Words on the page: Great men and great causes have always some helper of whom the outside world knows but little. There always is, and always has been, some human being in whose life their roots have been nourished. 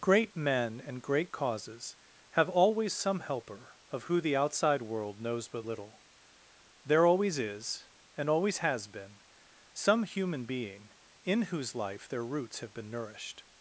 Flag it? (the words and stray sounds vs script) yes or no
yes